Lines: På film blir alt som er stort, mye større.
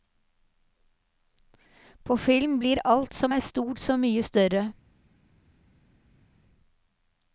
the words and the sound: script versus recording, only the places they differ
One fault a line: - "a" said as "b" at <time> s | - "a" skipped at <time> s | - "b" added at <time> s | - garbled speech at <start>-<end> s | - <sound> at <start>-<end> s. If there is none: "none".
- "så" added at 3.8 s